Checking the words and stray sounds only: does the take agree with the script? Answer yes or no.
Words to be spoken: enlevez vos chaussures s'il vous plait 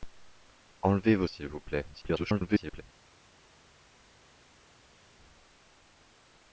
no